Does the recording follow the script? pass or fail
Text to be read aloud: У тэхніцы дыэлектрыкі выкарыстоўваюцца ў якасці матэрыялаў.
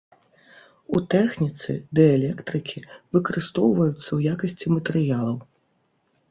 pass